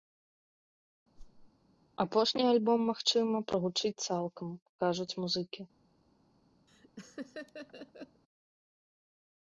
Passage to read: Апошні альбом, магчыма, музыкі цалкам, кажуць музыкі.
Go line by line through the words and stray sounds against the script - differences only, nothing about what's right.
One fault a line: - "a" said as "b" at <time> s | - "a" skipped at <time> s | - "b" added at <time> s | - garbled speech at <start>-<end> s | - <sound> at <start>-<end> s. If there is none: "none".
- whoosh at 1.2-1.5 s
- "музыкі" said as "прагучыць" at 3.5 s
- laugh at 6.7-8.2 s